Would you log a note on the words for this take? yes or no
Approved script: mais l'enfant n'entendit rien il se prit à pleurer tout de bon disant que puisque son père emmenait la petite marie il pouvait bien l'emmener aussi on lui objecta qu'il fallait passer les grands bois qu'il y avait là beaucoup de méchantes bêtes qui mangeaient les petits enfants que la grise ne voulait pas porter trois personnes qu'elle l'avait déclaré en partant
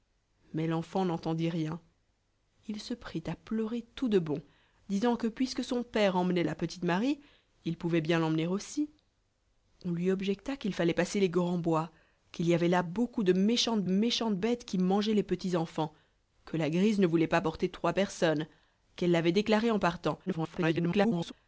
yes